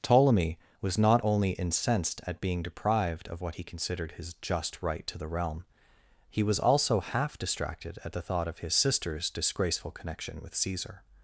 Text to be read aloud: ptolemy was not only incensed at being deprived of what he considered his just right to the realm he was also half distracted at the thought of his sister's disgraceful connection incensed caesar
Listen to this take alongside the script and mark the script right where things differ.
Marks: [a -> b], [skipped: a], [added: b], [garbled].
ptolemy was not only incensed at being deprived of what he considered his just right to the realm he was also half distracted at the thought of his sister's disgraceful connection [incensed -> with] caesar